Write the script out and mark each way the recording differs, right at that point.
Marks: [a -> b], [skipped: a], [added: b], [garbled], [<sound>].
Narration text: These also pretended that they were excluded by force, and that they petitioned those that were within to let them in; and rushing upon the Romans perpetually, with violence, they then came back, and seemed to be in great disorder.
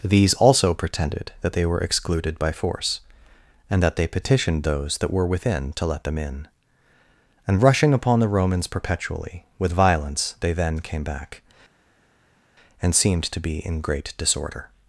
These also pretended that they were excluded by force, and that they petitioned those that were within to let them in; and rushing upon the Romans perpetually, with violence, they then came back, and seemed to be in great disorder.